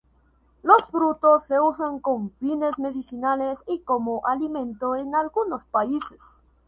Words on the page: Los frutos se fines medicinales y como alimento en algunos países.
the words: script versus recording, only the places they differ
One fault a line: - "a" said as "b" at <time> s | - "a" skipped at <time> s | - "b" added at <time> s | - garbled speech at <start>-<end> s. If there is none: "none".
- "usan con" added at 1.6 s